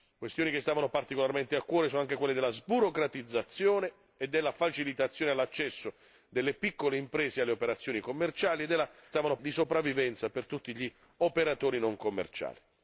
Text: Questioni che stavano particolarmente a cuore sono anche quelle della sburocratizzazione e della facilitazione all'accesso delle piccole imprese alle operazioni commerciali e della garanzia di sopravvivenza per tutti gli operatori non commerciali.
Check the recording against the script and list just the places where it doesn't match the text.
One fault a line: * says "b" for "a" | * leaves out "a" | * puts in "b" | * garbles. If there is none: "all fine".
* says "stavano" for "garanzia"